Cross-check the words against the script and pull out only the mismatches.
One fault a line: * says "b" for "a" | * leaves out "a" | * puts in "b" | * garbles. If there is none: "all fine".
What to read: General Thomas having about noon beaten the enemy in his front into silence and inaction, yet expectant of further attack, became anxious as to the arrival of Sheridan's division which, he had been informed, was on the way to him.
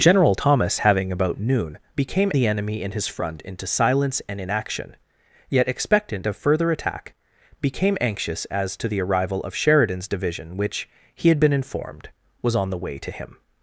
* says "became" for "beaten"